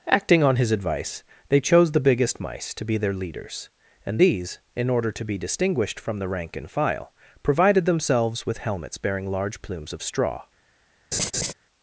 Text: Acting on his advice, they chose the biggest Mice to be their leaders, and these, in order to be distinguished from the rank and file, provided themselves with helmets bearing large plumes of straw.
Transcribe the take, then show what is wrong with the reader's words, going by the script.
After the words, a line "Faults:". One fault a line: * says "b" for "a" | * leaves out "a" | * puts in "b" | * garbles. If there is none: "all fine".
Acting on his advice, they chose the biggest Mice to be their leaders, and these, in order to be distinguished from the rank and file, provided themselves with helmets bearing large plumes of straw.
Faults:
all fine